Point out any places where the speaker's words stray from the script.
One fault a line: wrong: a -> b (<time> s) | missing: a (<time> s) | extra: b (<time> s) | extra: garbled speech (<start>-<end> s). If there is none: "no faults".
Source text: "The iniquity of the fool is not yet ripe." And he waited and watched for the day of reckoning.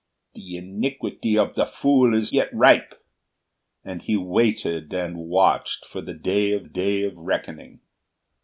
missing: not (2.3 s)
extra: day of (6.6 s)